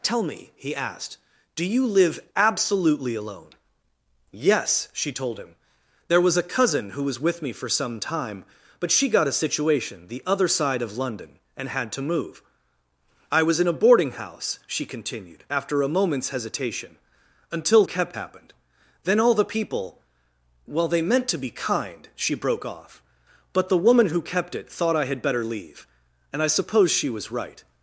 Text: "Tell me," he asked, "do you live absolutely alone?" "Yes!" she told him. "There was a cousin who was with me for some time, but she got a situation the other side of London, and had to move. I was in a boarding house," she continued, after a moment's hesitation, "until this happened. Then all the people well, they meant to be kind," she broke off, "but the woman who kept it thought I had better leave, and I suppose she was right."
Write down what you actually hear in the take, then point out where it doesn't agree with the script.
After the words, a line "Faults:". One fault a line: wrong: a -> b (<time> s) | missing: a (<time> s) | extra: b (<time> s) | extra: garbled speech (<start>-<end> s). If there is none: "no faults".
"Tell me," he asked, "do you live absolutely alone?" "Yes!" she told him. "There was a cousin who was with me for some time, but she got a situation the other side of London, and had to move. I was in a boarding house," she continued, after a moment's hesitation, "until kept happened. Then all the people well, they meant to be kind," she broke off, "but the woman who kept it thought I had better leave, and I suppose she was right."
Faults:
wrong: this -> kept (17.8 s)